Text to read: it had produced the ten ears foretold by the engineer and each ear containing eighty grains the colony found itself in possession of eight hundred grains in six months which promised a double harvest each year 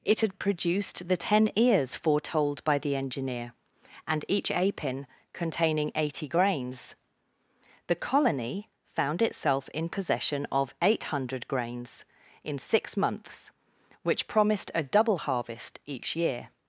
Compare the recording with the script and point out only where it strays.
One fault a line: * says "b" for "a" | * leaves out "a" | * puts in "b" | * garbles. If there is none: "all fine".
* says "apin" for "ear"